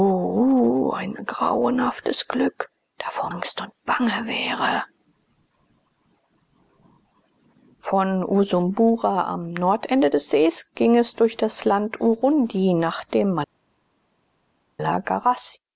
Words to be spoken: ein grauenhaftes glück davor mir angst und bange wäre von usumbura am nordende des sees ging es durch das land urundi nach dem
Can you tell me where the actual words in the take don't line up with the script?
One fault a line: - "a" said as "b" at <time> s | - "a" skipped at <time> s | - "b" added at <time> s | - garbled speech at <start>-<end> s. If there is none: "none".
- "mir" skipped at 3.3 s